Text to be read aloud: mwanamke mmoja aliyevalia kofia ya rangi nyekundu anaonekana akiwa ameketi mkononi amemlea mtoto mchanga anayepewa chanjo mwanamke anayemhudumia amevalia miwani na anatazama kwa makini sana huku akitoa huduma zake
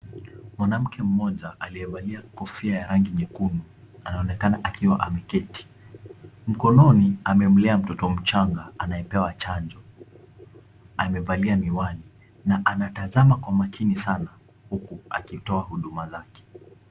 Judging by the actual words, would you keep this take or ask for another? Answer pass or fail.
fail